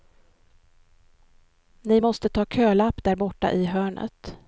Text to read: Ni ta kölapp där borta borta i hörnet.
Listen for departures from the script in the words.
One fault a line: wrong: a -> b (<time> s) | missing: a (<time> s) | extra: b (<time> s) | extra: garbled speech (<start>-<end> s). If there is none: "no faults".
extra: måste (2.0 s)
missing: borta (3.5 s)